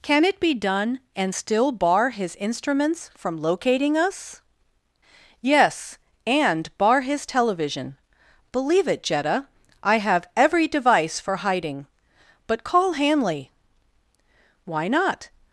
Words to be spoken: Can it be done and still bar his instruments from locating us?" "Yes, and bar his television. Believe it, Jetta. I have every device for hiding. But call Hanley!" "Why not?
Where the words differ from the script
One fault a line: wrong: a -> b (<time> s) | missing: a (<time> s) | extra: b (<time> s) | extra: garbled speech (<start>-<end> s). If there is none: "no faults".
no faults